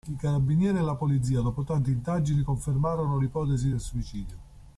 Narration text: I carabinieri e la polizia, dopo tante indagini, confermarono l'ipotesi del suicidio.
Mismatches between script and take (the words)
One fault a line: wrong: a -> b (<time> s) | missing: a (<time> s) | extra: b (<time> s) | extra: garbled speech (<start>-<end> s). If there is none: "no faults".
no faults